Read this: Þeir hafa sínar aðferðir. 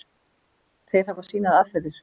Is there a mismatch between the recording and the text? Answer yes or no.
no